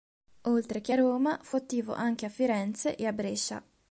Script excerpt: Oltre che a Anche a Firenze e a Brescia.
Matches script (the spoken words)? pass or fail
fail